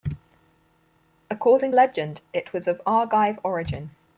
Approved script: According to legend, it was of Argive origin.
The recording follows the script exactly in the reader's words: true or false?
false